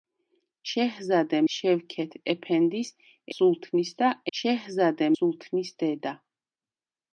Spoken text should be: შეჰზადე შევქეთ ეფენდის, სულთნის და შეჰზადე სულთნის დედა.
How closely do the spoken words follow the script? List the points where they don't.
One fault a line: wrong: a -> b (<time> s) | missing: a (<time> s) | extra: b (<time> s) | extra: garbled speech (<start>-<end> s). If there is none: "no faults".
no faults